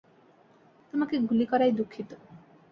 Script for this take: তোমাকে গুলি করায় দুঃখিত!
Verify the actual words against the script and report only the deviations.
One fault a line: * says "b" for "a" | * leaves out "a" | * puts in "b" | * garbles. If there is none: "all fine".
all fine